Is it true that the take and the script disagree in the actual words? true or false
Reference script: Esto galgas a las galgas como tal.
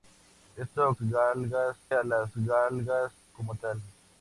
false